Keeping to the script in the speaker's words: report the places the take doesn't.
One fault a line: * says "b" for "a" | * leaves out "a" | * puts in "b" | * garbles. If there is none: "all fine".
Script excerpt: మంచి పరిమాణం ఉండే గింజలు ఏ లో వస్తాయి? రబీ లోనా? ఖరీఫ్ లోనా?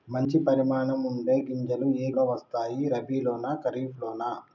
all fine